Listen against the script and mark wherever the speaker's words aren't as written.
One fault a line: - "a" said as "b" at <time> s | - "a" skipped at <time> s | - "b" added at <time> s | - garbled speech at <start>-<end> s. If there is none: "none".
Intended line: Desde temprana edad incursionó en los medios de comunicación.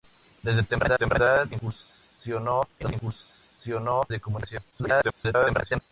- "temprana" added at 0.9 s
- "medios" said as "incursionó" at 2.9 s
- garbled speech at 4.7-5.8 s